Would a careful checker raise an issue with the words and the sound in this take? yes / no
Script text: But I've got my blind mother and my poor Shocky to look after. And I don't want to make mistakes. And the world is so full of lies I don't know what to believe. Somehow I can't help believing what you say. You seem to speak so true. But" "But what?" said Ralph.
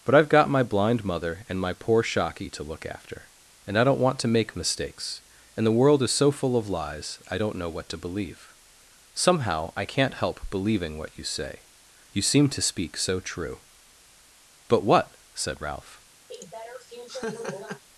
yes